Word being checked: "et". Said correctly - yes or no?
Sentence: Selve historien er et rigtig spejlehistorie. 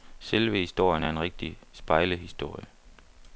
no